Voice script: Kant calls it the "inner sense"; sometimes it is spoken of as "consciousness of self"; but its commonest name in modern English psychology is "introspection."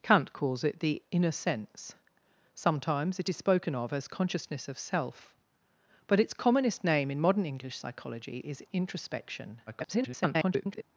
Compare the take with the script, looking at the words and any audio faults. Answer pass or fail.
fail